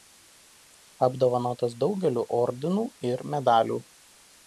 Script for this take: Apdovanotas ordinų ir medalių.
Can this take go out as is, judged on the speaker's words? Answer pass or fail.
fail